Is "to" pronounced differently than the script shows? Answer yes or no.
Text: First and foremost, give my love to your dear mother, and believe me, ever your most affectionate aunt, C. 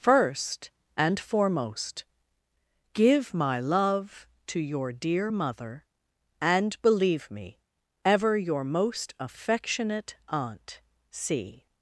no